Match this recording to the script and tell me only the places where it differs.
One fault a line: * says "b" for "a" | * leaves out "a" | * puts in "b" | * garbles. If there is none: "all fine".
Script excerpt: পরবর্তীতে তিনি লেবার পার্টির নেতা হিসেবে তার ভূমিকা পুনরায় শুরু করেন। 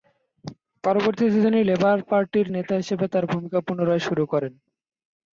all fine